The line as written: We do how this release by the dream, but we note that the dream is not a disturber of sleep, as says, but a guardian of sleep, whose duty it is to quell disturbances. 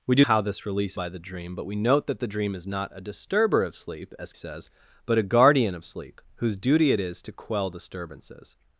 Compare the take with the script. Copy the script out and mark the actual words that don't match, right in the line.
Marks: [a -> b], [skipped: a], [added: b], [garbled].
We do how this release by the dream, but we note that the dream is not a disturber of sleep, as says, but a guardian of sleep, whose duty it is to quell disturbances.